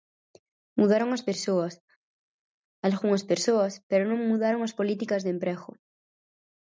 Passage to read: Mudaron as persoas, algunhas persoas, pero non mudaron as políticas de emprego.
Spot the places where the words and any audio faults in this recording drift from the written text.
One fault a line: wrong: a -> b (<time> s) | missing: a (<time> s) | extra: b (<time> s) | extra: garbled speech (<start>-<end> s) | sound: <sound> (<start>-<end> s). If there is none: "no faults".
no faults